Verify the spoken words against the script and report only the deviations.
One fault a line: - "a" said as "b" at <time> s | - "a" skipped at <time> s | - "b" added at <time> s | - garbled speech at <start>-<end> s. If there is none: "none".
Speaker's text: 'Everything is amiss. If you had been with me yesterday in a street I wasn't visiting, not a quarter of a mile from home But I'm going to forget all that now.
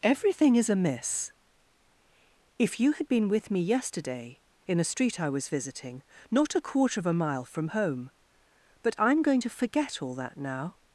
- "wasn't" said as "was" at 5.3 s